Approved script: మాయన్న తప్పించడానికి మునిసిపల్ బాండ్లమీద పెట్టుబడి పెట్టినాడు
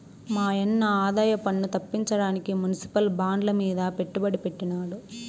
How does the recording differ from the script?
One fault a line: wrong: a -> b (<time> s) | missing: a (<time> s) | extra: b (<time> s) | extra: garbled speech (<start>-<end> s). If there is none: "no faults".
extra: ఆదాయపన్ను (1.0 s)